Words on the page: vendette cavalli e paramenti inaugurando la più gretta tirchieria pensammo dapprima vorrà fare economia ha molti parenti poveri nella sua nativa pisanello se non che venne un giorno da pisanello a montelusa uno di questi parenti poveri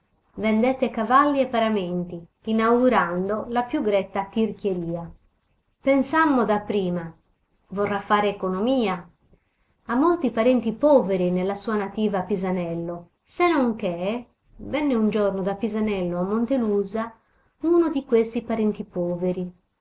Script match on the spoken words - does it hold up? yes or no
yes